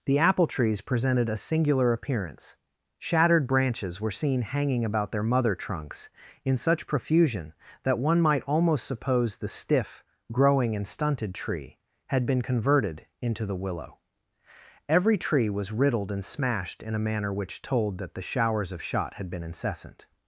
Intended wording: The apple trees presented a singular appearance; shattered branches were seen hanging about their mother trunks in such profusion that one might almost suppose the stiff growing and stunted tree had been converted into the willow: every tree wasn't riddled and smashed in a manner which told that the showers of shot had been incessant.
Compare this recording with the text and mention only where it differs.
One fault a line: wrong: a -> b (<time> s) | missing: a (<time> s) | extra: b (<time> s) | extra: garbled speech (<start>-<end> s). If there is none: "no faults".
wrong: wasn't -> was (15.5 s)